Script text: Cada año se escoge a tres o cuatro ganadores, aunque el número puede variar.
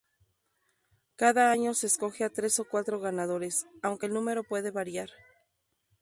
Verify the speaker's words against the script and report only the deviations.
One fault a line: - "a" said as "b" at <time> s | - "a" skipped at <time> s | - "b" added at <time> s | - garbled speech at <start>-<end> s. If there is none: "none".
none